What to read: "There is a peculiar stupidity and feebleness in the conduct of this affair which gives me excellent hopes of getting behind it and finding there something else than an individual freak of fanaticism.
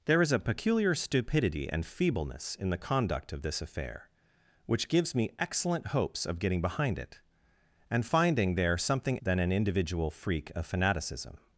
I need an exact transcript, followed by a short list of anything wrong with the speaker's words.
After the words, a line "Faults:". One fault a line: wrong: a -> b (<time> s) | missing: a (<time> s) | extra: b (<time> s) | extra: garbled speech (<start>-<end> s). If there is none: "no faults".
"There is a peculiar stupidity and feebleness in the conduct of this affair which gives me excellent hopes of getting behind it and finding there something than an individual freak of fanaticism.
Faults:
missing: else (9.2 s)